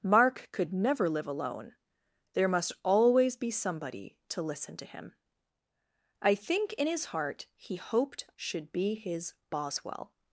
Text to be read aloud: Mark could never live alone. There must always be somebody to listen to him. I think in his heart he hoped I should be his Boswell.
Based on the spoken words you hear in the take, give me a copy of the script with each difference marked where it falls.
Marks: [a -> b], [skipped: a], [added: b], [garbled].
Mark could never live alone. There must always be somebody to listen to him. I think in his heart he hoped [skipped: I] should be his Boswell.